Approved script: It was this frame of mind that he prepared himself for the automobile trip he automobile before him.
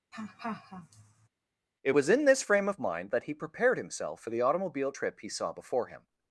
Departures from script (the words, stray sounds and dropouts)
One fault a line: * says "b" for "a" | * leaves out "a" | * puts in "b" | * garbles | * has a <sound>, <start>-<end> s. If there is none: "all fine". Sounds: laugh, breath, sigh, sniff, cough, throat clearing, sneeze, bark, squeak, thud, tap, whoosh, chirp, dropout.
* has a laugh, 0.1-1.3 s
* puts in "in"
* says "saw" for "automobile"